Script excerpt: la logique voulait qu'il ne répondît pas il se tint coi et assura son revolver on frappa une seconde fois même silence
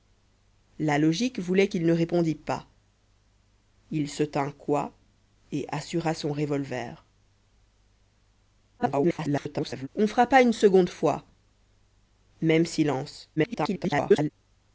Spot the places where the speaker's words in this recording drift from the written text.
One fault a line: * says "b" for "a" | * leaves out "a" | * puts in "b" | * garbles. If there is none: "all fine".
* garbles
* garbles